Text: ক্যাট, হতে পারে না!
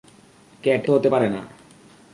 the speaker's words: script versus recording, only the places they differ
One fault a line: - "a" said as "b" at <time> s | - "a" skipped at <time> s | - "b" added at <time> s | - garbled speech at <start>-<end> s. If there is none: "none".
none